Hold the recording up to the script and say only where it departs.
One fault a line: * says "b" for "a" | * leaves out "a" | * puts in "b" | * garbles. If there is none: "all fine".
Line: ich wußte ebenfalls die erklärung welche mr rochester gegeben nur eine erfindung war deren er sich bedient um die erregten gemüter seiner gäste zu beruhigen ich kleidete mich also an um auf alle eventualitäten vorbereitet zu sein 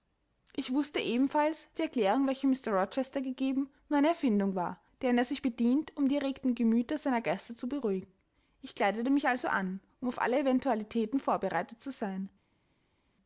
all fine